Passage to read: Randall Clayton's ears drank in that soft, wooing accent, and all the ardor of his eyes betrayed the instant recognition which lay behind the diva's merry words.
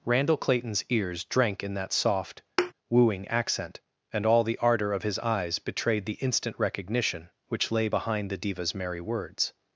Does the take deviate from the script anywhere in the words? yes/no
no